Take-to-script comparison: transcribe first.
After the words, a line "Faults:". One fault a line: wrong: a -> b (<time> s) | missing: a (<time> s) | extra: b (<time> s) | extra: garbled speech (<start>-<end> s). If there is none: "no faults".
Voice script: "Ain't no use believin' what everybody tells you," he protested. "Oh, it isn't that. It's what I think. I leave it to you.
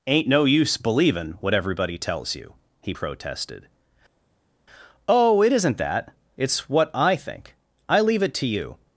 "Ain't no use believin' what everybody tells you," he protested. "Oh, it isn't that. It's what I think. I leave it to you.
Faults:
no faults